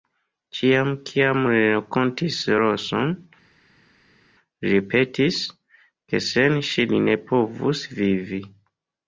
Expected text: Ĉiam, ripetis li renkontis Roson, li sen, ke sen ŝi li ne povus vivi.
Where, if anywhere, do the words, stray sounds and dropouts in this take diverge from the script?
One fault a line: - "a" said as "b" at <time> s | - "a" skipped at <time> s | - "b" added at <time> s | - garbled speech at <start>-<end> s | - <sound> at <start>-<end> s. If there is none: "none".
- "ripetis" said as "kiam" at 1.1 s
- "sen" said as "ripetis" at 4.8 s